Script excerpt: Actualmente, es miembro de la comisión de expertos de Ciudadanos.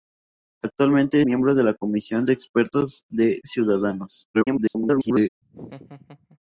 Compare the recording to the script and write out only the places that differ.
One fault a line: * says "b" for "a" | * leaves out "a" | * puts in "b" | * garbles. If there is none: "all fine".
* leaves out "es"
* garbles